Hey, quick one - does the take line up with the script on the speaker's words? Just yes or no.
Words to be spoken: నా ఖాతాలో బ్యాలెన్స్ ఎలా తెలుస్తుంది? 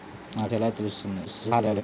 no